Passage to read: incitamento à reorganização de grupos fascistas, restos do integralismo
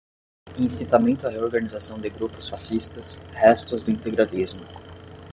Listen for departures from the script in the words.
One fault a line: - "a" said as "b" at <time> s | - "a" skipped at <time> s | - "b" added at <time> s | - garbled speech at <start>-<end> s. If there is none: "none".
none